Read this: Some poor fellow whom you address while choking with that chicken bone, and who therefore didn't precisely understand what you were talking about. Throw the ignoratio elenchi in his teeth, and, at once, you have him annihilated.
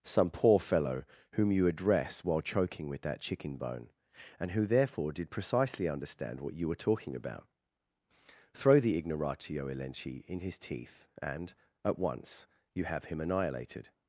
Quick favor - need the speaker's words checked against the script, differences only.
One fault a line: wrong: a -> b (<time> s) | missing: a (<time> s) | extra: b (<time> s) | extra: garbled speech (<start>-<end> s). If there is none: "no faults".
wrong: didn't -> did (5.1 s)